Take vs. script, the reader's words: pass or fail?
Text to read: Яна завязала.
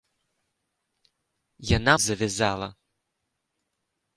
pass